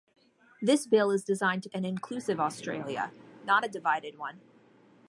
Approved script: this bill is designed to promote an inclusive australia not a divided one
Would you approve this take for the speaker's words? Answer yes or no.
no